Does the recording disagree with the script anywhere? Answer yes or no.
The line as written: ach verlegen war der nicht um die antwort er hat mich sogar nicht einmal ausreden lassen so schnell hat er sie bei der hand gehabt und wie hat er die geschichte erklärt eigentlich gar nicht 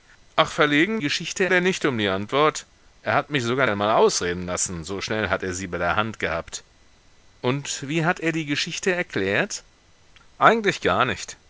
yes